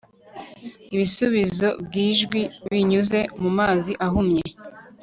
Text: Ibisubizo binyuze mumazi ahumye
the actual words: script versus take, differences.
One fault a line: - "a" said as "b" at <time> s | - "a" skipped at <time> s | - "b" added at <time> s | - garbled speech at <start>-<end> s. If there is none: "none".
- "byijwi" added at 1.9 s